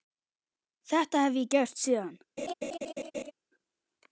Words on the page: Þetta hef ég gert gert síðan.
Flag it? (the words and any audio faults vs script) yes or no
yes